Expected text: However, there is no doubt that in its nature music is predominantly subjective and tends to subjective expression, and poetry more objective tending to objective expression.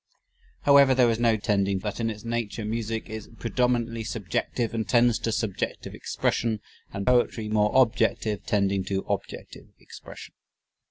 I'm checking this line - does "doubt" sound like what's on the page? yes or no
no